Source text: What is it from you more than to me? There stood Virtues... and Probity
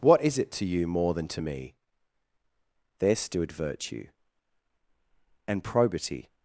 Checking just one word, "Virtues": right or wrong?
wrong